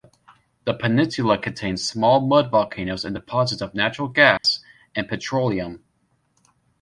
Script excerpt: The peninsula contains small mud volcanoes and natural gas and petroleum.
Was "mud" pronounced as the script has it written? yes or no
yes